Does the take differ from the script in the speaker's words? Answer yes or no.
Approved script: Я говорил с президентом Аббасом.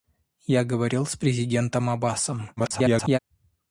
yes